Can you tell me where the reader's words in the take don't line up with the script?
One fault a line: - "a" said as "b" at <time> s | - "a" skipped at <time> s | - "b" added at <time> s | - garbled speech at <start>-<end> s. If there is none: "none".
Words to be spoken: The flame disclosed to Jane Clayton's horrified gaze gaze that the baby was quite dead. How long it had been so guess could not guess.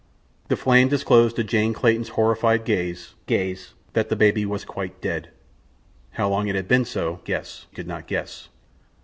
none